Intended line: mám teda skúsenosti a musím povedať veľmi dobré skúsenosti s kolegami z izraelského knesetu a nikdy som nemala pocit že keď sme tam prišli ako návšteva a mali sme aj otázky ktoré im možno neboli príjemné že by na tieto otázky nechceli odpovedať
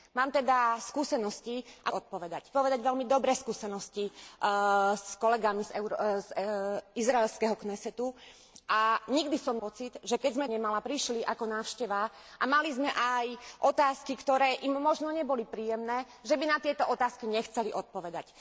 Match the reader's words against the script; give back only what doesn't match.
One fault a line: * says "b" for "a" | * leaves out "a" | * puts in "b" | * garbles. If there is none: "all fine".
* says "odpovedať" for "musím"
* leaves out "nemala"
* says "nemala" for "tam"